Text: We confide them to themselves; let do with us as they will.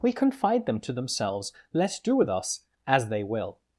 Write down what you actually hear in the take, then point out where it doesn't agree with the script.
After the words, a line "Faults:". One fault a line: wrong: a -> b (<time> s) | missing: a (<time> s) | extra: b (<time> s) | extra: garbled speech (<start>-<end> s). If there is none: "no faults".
We confide them to themselves; let do with us as they will.
Faults:
no faults